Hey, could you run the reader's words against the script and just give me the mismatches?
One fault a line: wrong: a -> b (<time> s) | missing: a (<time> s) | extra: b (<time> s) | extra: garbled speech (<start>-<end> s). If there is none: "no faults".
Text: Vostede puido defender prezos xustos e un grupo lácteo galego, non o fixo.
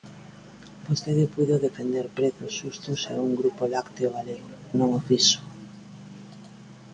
no faults